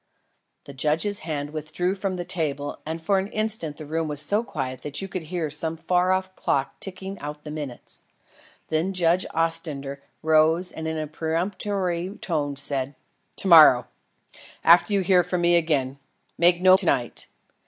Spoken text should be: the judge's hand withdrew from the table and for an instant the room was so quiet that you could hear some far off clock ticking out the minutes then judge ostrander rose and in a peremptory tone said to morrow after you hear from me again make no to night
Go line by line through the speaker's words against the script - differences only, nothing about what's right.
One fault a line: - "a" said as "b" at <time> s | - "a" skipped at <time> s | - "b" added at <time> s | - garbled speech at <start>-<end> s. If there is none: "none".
none